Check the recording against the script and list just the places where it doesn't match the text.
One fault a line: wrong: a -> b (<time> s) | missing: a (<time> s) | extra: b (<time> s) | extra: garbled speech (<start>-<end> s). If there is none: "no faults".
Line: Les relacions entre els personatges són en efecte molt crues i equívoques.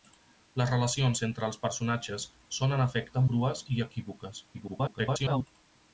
missing: molt (3.2 s)
extra: garbled speech (4.5-5.5 s)